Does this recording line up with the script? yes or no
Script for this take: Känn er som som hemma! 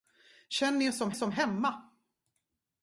yes